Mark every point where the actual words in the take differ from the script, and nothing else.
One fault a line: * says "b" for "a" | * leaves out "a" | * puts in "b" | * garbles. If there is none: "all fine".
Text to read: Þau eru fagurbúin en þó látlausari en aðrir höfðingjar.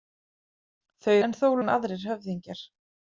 * leaves out "eru fagurbúin"
* leaves out "látlausari"